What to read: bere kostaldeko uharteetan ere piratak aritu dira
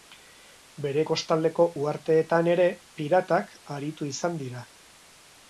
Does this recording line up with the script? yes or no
no